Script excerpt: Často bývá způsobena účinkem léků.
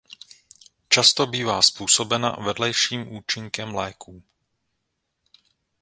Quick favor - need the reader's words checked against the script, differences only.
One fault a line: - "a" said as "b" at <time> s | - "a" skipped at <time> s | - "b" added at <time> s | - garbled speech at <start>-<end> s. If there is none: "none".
- "vedlejším" added at 2.3 s